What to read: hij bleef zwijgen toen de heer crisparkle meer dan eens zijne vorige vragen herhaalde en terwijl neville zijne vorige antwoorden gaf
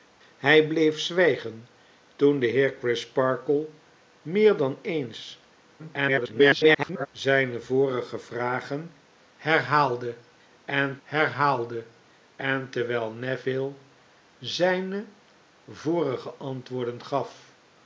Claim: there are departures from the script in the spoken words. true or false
true